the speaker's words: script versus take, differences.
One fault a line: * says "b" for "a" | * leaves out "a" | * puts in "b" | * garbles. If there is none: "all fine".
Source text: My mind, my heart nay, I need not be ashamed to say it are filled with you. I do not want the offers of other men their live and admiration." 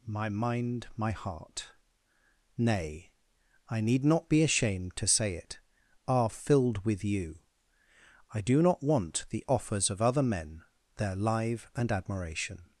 all fine